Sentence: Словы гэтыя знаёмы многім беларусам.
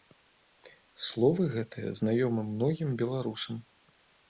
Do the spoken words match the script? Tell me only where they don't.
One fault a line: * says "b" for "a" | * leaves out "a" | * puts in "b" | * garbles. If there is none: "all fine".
all fine